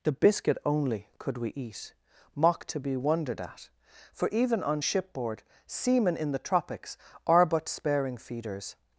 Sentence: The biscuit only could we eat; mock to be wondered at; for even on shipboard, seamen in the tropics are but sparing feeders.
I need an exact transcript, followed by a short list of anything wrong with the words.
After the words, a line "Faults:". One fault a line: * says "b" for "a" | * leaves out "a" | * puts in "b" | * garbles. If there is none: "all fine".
The biscuit only could we eat; mock to be wondered at; for even on shipboard, seamen in the tropics are but sparing feeders.
Faults:
all fine